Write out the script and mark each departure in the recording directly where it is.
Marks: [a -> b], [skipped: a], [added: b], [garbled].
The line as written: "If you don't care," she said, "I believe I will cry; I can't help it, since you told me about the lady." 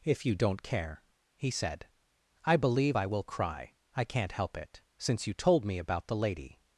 "If you don't care," [she -> he] said, "I believe I will cry; I can't help it, since you told me about the lady."